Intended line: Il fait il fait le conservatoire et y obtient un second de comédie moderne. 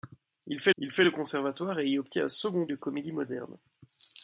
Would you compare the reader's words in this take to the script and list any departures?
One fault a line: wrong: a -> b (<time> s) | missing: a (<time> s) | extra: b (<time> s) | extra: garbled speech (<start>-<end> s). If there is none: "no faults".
no faults